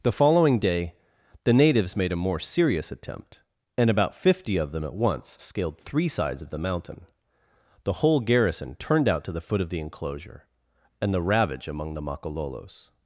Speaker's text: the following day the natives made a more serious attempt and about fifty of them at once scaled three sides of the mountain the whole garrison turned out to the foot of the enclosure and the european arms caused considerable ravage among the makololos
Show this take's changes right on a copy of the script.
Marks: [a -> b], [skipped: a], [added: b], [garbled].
the following day the natives made a more serious attempt and about fifty of them at once scaled three sides of the mountain the whole garrison turned out to the foot of the enclosure and the [skipped: european arms caused considerable] ravage among the makololos